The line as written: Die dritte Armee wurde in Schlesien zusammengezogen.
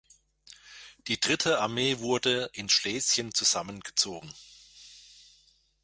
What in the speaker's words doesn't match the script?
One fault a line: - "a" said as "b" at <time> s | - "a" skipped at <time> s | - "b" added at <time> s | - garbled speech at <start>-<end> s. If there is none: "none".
none